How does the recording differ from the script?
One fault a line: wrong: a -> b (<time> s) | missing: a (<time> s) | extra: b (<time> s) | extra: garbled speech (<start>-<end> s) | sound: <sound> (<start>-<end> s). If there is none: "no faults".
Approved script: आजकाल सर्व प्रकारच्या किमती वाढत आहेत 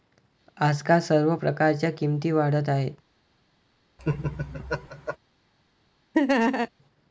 sound: laugh (4.0-5.2 s)
sound: laugh (6.1-6.7 s)